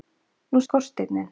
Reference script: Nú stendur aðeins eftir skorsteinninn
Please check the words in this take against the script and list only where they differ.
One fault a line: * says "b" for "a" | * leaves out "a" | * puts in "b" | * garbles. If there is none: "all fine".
* leaves out "stendur aðeins eftir"